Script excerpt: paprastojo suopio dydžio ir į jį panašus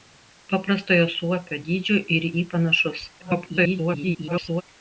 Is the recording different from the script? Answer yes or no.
yes